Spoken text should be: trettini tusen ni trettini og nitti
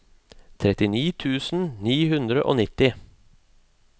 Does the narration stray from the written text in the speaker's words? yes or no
yes